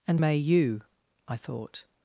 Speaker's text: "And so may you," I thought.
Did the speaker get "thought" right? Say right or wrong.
right